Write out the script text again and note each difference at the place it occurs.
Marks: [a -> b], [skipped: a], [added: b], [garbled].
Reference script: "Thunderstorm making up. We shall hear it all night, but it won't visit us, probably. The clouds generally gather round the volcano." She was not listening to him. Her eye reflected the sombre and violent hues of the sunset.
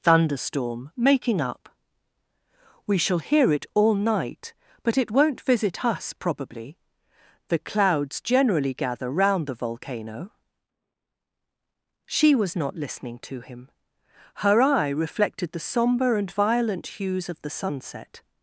"Thunderstorm making up. We shall hear it all night, but it won't visit us, probably. The clouds generally gather round the volcano." She was not listening to him. Her eye reflected the sombre and violent hues of the sunset.